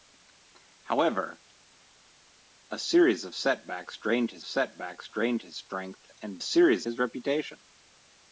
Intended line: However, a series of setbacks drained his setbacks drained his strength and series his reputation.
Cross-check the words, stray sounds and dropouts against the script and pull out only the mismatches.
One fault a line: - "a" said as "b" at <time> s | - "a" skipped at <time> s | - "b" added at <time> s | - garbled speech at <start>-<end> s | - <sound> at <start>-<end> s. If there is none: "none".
none